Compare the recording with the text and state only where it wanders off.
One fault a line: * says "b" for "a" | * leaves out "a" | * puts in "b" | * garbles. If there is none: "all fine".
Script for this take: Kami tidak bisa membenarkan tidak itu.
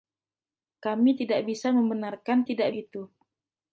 all fine